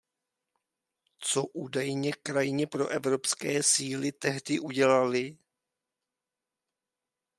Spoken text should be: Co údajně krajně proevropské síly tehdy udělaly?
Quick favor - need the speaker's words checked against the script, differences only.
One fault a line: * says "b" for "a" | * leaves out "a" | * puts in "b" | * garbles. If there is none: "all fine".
all fine